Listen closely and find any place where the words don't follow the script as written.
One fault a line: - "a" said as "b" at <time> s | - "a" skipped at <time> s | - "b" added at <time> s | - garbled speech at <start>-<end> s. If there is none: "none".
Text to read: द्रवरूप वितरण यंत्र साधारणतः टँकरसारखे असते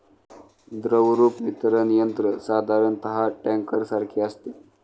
none